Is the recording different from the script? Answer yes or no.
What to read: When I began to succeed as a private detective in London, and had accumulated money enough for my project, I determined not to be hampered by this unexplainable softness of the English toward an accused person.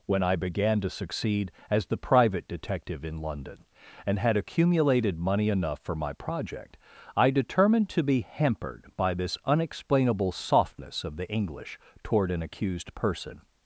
yes